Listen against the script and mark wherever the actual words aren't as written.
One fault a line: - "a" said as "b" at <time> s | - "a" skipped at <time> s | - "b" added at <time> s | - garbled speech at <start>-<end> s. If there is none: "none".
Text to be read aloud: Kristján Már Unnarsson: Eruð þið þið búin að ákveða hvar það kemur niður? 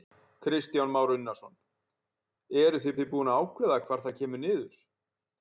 none